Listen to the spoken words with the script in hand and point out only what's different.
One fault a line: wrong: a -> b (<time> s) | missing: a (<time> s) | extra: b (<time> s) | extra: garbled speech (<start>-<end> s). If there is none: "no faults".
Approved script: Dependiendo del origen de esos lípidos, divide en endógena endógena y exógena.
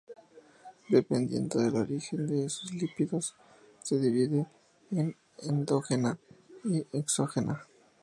extra: se (3.8 s)
missing: endógena (6.2 s)